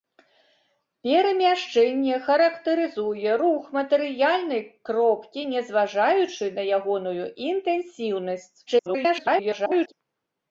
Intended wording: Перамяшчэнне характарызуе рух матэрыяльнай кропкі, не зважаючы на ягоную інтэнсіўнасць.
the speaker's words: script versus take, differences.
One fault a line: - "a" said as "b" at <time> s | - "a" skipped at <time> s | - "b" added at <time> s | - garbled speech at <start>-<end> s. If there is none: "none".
- garbled speech at 8.7-9.9 s